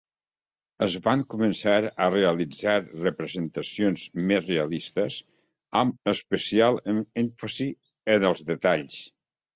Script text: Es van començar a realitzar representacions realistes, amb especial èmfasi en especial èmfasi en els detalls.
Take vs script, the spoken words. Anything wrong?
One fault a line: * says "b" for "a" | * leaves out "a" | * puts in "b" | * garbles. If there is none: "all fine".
* puts in "més"
* leaves out "especial èmfasi en"